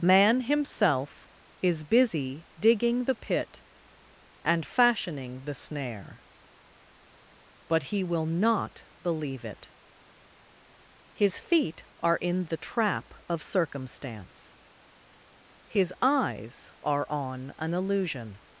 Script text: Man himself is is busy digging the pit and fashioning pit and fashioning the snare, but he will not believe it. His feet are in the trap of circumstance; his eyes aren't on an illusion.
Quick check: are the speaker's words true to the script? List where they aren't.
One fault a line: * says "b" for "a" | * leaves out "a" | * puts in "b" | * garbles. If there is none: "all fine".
* leaves out "is"
* leaves out "pit and fashioning"
* says "are" for "aren't"